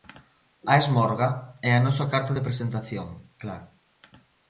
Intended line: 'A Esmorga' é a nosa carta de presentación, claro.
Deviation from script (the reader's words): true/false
false